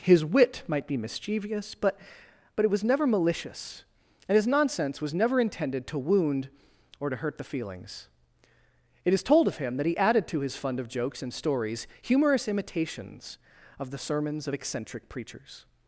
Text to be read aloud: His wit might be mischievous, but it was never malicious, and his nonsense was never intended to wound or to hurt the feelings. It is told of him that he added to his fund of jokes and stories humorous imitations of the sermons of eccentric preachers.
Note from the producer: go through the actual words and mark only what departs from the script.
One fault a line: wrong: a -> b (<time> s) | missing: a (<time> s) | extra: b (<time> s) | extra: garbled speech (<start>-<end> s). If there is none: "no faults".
extra: but (2.5 s)